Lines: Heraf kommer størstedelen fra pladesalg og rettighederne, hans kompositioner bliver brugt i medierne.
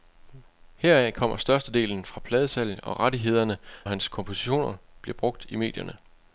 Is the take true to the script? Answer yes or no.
yes